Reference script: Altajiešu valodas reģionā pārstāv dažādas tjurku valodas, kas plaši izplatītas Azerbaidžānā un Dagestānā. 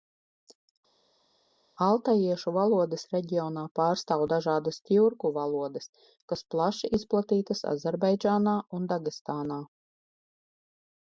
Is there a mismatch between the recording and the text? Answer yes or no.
no